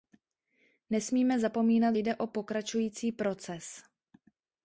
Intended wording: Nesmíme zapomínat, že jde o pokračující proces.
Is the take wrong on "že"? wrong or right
wrong